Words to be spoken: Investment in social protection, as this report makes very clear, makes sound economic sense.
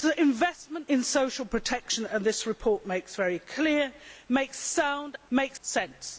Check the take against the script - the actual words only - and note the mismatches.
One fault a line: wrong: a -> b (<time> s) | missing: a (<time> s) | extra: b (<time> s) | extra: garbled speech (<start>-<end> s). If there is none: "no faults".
wrong: economic -> makes (5.3 s)